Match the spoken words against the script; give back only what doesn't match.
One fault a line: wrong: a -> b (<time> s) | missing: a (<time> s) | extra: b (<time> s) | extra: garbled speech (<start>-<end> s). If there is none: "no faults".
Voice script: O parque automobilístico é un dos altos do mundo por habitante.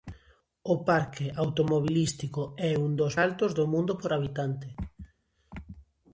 no faults